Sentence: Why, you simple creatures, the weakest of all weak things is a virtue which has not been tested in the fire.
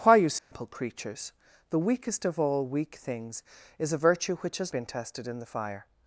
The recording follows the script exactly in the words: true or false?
false